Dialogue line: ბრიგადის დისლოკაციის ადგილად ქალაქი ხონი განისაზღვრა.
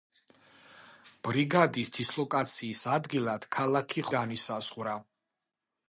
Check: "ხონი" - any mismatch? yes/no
yes